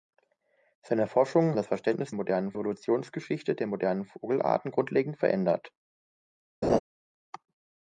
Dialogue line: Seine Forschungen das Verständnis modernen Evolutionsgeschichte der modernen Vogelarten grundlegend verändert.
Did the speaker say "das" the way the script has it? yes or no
yes